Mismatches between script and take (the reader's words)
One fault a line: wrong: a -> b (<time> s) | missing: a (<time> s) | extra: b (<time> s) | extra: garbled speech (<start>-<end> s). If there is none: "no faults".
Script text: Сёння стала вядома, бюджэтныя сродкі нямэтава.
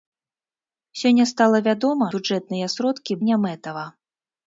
no faults